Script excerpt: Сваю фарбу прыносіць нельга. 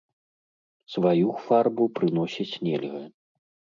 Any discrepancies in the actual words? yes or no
no